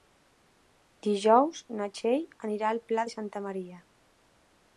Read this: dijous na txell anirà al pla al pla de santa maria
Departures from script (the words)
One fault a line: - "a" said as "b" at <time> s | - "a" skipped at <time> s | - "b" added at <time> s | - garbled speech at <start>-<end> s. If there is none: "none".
- "al pla" skipped at 3.1 s